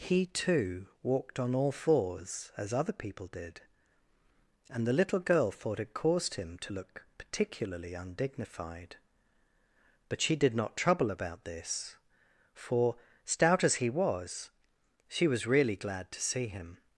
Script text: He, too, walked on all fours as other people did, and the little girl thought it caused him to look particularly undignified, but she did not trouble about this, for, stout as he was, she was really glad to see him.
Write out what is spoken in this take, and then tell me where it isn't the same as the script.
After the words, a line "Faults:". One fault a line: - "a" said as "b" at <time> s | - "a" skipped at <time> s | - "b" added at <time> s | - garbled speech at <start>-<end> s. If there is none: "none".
He, too, walked on all fours as other people did, and the little girl thought it caused him to look particularly undignified, but she did not trouble about this, for, stout as he was, she was really glad to see him.
Faults:
none